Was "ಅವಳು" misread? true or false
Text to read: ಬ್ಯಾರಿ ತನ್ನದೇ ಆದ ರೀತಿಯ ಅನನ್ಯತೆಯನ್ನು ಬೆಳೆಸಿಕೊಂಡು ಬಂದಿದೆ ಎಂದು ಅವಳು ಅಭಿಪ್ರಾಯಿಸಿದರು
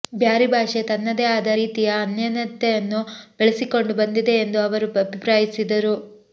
true